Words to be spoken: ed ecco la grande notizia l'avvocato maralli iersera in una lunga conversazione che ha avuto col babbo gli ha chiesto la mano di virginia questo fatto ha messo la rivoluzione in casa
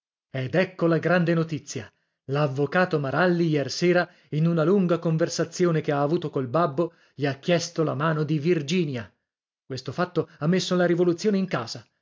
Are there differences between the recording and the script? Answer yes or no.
no